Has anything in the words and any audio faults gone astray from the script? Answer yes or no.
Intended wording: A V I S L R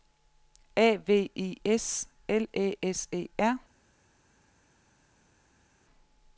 yes